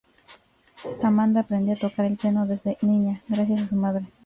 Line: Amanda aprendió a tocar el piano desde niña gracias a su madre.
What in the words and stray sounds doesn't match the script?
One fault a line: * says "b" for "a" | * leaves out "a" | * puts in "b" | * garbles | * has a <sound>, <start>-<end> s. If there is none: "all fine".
all fine